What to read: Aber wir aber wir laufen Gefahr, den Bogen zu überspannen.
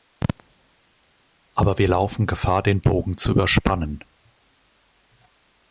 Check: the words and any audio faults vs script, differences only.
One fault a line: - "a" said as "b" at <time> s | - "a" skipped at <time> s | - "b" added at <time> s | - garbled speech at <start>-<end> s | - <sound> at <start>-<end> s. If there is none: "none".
- "aber wir" skipped at 1.9 s